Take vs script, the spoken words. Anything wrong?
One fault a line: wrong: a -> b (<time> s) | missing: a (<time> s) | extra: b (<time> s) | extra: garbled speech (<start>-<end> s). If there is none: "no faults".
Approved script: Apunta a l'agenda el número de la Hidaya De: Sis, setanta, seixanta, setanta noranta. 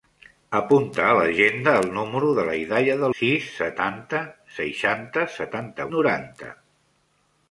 no faults